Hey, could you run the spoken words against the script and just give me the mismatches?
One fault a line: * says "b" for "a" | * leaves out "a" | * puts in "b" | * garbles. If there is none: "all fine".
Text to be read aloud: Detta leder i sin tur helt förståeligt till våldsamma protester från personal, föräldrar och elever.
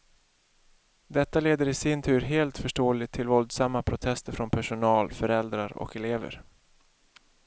all fine